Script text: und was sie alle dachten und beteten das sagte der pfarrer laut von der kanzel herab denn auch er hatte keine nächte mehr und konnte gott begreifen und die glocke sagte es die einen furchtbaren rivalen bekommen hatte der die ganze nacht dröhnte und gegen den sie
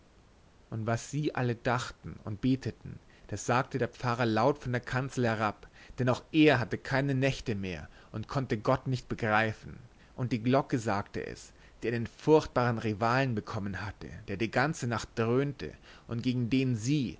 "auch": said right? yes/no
yes